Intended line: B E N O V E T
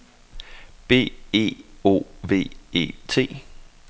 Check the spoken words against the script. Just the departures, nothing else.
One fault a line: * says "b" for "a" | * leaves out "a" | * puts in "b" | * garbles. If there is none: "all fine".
* leaves out "N"